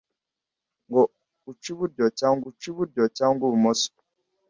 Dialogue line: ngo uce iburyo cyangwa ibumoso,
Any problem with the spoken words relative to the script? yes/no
yes